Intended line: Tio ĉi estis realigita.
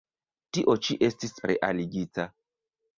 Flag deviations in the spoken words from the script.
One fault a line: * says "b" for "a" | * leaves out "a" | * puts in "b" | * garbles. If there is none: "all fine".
all fine